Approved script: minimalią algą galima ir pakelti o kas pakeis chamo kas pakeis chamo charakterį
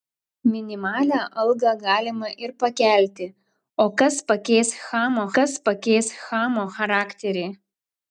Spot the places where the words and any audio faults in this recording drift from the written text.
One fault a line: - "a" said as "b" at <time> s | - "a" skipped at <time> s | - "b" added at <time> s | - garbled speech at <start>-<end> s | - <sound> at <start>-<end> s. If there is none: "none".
none